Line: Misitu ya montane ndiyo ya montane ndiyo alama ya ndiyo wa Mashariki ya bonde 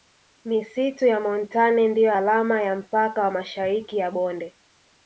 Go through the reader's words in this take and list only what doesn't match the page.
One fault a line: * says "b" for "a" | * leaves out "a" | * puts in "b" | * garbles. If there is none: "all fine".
* leaves out "ya montane ndiyo"
* says "mpaka" for "ndiyo"